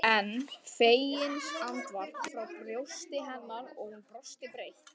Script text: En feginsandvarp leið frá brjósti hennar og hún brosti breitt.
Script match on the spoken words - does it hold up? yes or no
no